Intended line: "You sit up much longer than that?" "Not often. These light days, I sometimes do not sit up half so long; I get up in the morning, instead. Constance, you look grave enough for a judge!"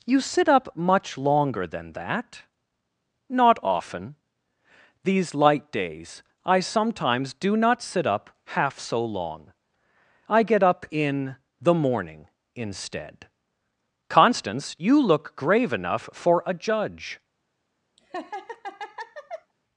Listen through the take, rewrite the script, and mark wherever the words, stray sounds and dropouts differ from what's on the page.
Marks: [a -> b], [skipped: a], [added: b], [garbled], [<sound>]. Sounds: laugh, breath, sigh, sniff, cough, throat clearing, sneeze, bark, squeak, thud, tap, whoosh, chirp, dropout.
"You sit up much longer than that?" "Not often. These light days, I sometimes do not sit up half so long; I get up in the morning, instead. Constance, you look grave enough for a judge!" [laugh]